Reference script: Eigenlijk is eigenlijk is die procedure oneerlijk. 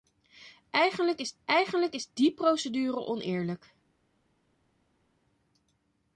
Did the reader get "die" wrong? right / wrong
right